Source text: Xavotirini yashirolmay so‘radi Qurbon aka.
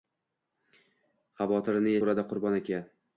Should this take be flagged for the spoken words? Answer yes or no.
yes